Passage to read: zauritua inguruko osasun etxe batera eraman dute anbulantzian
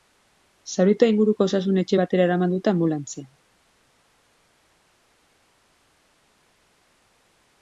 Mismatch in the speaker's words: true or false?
false